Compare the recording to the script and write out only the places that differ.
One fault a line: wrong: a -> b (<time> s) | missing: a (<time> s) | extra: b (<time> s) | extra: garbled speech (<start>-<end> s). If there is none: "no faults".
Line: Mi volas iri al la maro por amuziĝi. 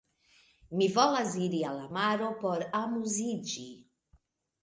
no faults